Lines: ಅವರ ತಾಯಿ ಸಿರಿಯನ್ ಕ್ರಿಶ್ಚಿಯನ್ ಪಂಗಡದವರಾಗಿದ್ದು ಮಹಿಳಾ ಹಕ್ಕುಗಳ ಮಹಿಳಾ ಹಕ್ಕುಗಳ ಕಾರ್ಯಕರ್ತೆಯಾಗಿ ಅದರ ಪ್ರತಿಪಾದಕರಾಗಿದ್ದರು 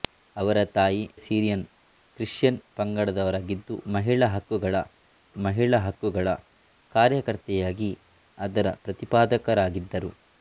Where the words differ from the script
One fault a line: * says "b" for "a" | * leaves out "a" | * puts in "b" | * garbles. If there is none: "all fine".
all fine